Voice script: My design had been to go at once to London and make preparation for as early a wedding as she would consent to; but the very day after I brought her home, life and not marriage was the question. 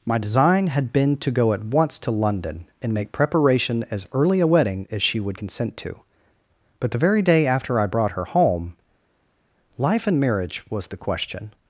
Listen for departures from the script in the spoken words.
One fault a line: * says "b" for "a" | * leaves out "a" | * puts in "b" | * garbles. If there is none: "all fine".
* leaves out "for"
* leaves out "not"